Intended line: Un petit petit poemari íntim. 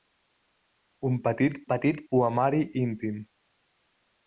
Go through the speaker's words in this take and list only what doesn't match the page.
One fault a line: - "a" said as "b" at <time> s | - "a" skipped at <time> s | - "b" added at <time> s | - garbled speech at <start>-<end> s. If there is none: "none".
none